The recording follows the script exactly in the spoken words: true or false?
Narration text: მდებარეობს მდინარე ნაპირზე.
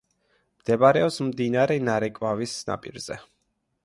false